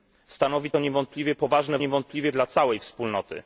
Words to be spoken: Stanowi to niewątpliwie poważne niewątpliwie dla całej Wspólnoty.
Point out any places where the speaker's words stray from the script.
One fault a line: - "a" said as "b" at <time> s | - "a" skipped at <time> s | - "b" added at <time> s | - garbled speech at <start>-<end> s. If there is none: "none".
none